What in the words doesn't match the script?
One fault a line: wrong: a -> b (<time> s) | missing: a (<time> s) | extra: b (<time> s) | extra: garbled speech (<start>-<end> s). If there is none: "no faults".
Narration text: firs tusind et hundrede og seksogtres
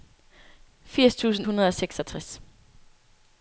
missing: et (1.5 s)